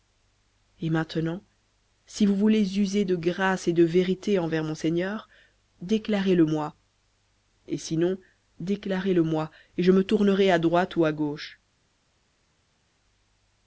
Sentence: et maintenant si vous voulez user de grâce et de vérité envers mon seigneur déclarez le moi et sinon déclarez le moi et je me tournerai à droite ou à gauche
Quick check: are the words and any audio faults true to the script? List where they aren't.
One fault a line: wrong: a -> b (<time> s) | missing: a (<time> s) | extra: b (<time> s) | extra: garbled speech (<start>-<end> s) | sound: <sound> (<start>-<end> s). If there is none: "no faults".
no faults